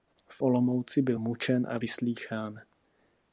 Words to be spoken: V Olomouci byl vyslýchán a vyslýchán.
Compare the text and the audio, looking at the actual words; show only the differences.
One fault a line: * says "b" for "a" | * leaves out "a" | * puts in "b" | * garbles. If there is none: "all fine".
* says "mučen" for "vyslýchán"